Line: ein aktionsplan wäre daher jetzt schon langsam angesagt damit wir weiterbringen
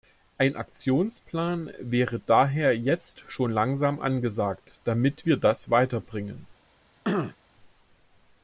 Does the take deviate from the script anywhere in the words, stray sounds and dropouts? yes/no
yes